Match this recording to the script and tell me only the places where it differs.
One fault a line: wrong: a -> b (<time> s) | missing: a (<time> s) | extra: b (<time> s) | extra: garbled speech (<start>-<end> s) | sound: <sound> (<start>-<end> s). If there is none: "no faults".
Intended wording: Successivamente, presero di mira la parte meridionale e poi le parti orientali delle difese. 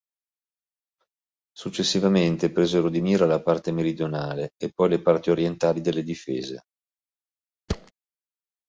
sound: thud (7.7-7.9 s)